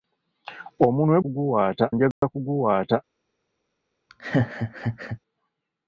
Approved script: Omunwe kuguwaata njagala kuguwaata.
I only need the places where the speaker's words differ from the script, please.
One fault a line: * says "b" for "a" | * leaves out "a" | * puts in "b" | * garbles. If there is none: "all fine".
all fine